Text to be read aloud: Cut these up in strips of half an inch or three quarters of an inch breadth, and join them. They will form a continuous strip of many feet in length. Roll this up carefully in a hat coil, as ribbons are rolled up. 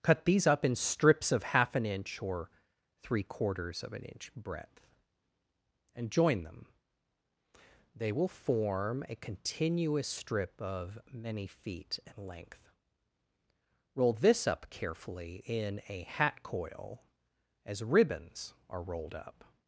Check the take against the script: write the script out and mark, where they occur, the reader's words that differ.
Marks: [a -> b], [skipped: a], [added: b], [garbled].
Cut these up in strips of half an inch or three quarters of an inch breadth, and join them. They will form a continuous strip of many feet in length. Roll this up carefully in a hat coil, as ribbons are rolled up.